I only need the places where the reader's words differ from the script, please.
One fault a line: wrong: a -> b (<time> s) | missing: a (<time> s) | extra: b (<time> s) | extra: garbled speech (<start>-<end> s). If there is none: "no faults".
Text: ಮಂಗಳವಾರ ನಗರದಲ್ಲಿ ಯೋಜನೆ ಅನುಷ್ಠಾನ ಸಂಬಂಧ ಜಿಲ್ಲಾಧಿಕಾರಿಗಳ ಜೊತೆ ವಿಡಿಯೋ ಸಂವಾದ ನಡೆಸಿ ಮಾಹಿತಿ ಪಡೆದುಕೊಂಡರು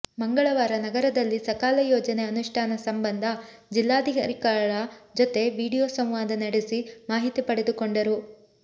extra: ಸಕಾಲ (1.4 s)